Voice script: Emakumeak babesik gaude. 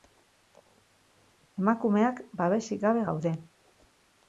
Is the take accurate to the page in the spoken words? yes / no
no